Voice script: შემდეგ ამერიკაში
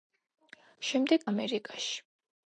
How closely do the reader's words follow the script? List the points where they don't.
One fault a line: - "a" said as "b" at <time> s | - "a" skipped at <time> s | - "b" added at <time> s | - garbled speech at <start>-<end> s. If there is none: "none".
none